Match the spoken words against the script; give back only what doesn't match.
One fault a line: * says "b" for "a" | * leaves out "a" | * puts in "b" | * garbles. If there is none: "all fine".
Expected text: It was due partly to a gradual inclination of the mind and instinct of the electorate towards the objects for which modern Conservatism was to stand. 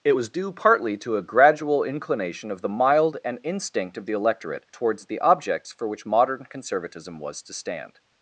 * says "mild" for "mind"